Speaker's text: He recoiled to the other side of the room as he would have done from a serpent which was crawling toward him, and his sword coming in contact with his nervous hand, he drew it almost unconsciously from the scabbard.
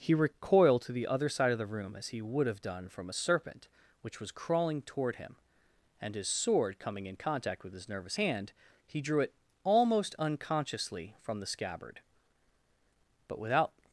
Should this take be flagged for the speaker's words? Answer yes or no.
yes